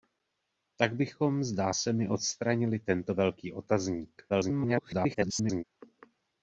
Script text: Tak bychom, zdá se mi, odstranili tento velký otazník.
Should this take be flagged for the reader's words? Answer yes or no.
yes